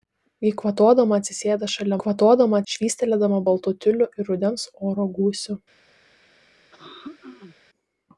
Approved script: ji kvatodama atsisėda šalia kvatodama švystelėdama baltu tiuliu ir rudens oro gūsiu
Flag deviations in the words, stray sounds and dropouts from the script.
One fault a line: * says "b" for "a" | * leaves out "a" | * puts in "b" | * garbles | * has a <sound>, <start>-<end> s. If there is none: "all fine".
* has a throat clearing, 6.7-7.6 s